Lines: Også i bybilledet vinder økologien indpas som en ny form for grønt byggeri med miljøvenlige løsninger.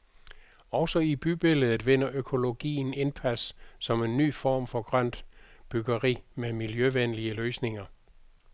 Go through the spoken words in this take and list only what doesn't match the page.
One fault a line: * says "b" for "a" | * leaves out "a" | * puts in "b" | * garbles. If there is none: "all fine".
all fine